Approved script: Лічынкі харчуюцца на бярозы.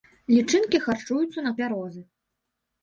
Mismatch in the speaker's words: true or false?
false